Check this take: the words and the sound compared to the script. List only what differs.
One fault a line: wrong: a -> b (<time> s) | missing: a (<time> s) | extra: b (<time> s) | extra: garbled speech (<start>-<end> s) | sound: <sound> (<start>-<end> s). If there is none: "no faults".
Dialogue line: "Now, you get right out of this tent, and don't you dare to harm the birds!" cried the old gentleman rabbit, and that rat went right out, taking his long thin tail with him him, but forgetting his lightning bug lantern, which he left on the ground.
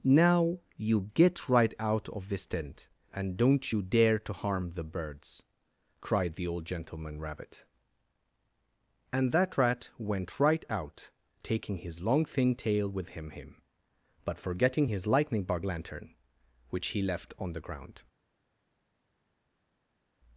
no faults